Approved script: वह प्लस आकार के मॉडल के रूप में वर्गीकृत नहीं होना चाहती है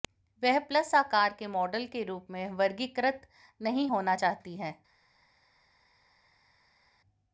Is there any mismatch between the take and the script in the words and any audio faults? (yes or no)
no